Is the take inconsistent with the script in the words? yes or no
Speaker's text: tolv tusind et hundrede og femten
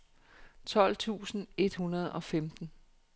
no